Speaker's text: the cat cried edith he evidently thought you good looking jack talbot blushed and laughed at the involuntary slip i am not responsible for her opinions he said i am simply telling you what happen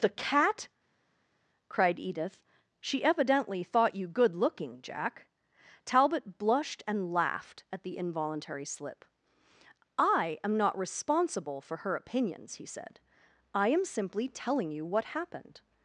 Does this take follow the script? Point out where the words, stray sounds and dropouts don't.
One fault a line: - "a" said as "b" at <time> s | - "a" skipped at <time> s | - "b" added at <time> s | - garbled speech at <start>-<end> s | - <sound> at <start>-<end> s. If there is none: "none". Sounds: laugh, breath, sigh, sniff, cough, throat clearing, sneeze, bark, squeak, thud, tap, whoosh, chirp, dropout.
- "he" said as "she" at 2.8 s
- "happen" said as "happened" at 15.1 s